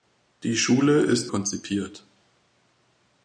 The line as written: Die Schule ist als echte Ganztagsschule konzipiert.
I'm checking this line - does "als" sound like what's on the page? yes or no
no